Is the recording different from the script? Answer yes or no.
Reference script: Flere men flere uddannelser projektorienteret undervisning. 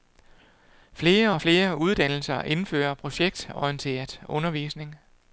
yes